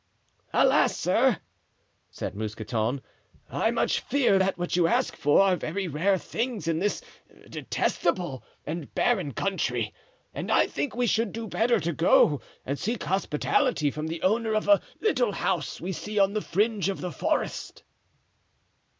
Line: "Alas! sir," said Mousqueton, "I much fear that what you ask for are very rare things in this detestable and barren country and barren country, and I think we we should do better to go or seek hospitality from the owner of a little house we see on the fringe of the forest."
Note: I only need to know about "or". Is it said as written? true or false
false